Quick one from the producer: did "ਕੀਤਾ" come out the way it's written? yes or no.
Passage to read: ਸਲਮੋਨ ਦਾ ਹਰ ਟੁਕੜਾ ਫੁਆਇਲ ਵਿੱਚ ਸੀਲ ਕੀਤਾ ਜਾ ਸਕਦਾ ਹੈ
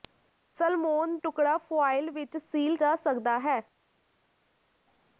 no